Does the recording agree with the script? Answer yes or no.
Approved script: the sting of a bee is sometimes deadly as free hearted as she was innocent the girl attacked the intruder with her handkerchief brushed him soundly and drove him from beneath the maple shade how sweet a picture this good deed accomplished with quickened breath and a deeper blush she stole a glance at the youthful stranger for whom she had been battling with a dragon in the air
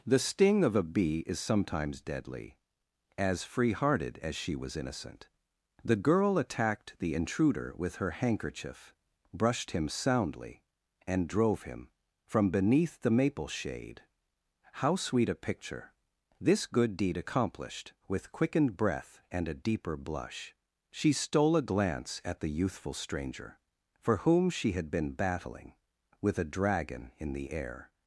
yes